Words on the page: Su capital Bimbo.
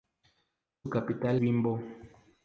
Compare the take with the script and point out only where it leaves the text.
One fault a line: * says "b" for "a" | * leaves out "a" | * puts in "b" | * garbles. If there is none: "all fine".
all fine